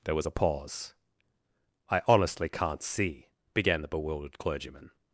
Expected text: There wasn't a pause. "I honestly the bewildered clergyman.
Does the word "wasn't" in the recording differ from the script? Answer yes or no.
yes